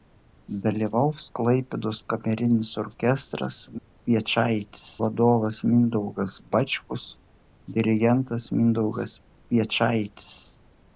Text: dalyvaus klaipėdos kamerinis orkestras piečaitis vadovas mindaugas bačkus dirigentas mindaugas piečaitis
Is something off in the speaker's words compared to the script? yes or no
no